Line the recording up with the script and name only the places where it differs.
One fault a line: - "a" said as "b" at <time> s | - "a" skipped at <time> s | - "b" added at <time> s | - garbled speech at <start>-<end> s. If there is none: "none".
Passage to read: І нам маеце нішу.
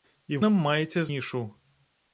none